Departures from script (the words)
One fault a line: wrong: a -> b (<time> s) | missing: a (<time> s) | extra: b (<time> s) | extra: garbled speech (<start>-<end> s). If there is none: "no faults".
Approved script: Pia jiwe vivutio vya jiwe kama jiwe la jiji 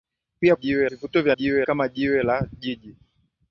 no faults